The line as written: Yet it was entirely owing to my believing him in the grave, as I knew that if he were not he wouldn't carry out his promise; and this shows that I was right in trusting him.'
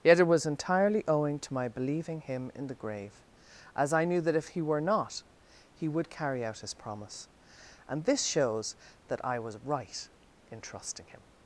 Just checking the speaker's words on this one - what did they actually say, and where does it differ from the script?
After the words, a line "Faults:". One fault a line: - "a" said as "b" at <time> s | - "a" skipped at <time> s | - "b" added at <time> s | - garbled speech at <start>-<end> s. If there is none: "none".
Yet it was entirely owing to my believing him in the grave, as I knew that if he were not he would carry out his promise; and this shows that I was right in trusting him.'
Faults:
- "wouldn't" said as "would" at 5.9 s